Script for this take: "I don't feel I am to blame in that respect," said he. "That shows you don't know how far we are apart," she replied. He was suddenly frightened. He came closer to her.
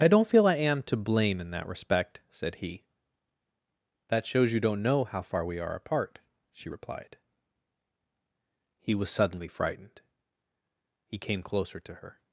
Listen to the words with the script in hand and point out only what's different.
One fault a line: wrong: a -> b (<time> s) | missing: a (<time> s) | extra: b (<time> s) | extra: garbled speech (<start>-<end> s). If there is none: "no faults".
no faults